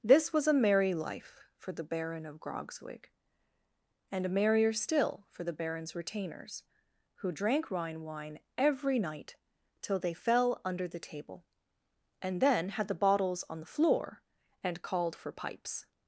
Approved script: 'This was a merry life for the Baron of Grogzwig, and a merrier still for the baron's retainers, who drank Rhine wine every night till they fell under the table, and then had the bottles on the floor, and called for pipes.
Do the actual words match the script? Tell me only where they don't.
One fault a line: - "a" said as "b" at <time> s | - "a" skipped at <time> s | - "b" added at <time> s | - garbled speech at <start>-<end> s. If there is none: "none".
none